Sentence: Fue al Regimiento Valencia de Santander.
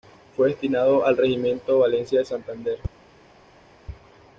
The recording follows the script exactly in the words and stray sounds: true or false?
false